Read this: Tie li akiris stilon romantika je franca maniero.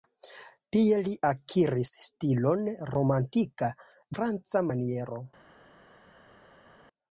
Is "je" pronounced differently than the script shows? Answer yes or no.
yes